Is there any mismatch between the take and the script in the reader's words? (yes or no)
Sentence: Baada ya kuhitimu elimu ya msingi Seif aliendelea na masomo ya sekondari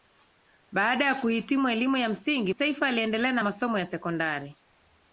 no